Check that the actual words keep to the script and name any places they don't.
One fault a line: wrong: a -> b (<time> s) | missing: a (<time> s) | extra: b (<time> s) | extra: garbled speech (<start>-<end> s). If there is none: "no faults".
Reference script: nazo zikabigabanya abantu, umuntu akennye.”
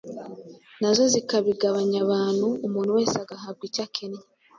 extra: wese agahabwa icyo (3.0 s)